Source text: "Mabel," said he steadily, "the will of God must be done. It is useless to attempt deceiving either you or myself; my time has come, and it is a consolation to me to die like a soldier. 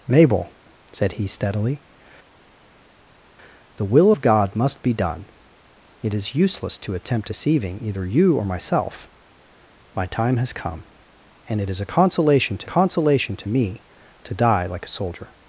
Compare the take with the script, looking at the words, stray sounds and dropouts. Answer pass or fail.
fail